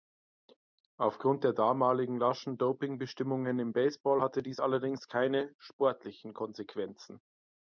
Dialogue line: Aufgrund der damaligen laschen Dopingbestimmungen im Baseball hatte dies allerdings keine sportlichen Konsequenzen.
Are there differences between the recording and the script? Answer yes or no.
no